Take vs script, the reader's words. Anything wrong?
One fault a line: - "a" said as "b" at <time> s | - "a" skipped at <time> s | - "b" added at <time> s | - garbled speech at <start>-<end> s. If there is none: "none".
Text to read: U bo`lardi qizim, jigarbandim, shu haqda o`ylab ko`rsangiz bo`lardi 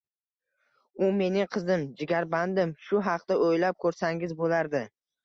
- "bo`lardi" said as "mening" at 1.2 s